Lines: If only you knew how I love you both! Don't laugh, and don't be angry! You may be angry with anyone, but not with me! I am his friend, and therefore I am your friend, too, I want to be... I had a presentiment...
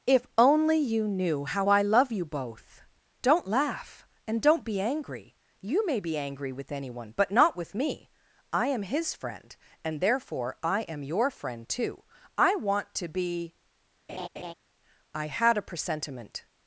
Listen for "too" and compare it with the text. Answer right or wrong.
right